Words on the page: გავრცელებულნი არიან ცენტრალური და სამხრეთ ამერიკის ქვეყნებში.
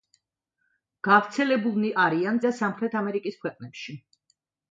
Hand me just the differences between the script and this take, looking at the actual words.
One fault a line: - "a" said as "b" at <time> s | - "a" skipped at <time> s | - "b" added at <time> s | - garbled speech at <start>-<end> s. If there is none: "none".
- "ცენტრალური" skipped at 2.4 s